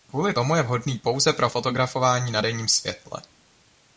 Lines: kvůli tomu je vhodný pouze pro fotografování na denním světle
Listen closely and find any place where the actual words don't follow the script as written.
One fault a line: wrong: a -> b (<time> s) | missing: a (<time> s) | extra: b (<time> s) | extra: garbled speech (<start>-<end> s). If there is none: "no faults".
no faults